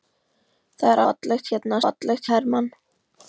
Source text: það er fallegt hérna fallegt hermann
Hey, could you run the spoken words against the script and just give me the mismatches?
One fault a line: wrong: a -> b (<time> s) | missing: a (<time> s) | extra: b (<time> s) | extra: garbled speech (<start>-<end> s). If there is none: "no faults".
no faults